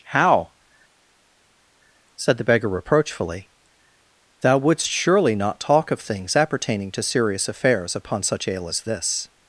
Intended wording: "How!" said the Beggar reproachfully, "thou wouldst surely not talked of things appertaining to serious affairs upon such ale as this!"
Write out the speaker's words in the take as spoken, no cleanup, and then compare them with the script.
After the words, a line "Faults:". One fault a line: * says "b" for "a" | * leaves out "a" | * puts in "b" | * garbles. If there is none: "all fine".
"How!" said the Beggar reproachfully, "thou wouldst surely not talk of things appertaining to serious affairs upon such ale as this!"
Faults:
* says "talk" for "talked"